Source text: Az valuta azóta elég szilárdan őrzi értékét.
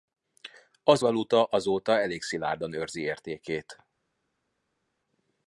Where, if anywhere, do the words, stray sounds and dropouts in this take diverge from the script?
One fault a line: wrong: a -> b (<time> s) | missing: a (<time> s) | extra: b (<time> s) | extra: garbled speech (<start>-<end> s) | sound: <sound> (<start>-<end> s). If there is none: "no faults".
no faults